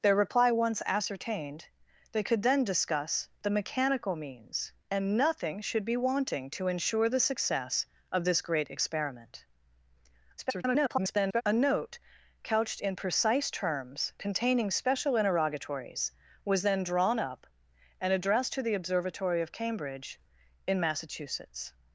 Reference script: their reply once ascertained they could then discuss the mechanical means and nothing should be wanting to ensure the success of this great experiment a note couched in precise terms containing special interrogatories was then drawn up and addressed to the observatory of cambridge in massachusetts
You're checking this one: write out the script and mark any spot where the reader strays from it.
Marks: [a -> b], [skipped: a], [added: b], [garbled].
their reply once ascertained they could then discuss the mechanical means and nothing should be wanting to ensure the success of this great experiment [garbled] a note couched in precise terms containing special interrogatories was then drawn up and addressed to the observatory of cambridge in massachusetts